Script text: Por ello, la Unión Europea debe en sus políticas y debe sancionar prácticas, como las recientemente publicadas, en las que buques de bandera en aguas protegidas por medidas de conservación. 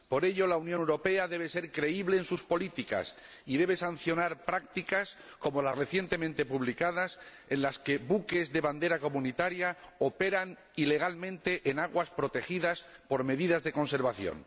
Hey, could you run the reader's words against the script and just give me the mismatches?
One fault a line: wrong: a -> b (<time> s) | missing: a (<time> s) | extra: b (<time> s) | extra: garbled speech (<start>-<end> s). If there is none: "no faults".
extra: ser creíble (1.5 s)
extra: comunitaria operan ilegalmente (9.0 s)